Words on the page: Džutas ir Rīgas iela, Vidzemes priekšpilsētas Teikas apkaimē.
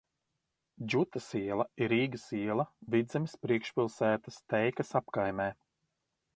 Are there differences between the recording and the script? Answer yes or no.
yes